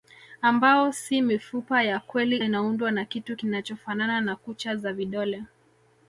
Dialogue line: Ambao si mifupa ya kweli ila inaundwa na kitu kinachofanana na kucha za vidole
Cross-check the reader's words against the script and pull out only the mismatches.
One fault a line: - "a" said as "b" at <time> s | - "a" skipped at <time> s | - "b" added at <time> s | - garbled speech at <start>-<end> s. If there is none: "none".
- "ila" skipped at 2.4 s